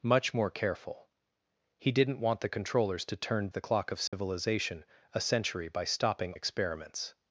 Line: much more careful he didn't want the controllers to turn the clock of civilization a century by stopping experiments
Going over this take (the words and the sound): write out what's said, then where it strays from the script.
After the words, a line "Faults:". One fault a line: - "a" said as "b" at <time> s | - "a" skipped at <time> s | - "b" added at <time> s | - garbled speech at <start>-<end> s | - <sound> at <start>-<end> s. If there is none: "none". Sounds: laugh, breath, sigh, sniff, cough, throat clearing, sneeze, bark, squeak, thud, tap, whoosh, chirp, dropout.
much more careful he didn't want the controllers to turn the clock of civilization a century by stopping experiments
Faults:
- dropout at 4.1-4.1 s